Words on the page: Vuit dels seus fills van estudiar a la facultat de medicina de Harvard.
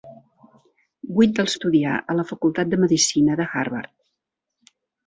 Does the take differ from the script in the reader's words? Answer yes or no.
yes